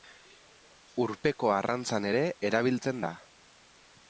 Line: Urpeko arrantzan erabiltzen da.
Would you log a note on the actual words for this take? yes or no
yes